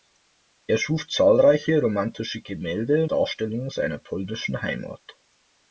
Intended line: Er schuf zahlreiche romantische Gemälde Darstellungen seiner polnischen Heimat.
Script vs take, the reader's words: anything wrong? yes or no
no